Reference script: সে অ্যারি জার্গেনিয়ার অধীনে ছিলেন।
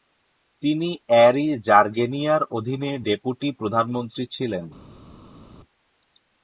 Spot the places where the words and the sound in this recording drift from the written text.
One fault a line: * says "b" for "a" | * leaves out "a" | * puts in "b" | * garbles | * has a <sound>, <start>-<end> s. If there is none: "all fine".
* says "তিনি" for "সে"
* puts in "ডেপুটি প্রধানমন্ত্রী"